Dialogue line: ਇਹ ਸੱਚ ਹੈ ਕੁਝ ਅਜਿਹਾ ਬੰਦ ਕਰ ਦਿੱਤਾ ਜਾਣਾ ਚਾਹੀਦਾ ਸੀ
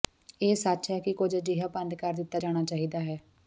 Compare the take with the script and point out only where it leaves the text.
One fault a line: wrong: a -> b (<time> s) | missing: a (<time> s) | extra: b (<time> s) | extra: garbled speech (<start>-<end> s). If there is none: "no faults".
extra: ਕਿ (1.0 s)
wrong: ਸੀ -> ਹੈ (3.0 s)